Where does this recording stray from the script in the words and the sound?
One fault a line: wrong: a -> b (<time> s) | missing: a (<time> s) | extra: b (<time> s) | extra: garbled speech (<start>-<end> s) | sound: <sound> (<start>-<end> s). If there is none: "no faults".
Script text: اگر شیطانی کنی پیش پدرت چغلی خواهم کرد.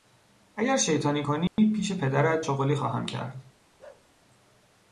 sound: dropout (1.5-1.6 s)
sound: bark (3.8-4.1 s)